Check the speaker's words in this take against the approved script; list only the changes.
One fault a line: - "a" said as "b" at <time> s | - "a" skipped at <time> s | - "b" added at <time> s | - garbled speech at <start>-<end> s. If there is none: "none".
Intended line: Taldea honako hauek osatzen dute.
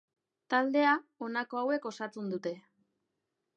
none